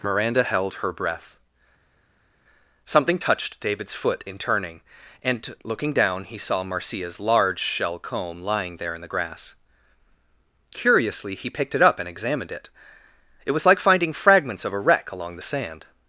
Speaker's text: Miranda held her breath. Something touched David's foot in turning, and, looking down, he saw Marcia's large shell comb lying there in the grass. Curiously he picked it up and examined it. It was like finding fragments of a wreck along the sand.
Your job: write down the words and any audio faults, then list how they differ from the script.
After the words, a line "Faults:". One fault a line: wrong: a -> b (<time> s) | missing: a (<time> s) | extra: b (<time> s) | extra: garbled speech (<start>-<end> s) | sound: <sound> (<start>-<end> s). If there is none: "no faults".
Miranda held her breath. Something touched David's foot in turning, and, looking down, he saw Marcia's large shell comb lying there in the grass. Curiously he picked it up and examined it. It was like finding fragments of a wreck along the sand.
Faults:
no faults